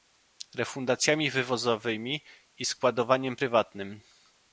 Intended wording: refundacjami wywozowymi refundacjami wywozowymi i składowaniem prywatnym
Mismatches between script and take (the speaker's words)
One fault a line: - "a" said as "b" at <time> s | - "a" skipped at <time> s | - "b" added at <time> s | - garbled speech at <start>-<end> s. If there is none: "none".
- "refundacjami wywozowymi" skipped at 2.2 s